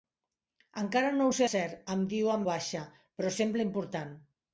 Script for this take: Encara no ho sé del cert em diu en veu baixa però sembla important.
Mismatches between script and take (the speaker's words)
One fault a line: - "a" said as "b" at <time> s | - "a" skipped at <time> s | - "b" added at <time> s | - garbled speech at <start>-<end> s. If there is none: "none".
- "del" skipped at 1.5 s
- "veu" skipped at 2.4 s